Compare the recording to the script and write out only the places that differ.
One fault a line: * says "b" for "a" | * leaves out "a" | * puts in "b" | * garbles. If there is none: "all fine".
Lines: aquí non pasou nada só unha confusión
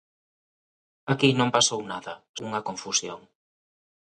* leaves out "só"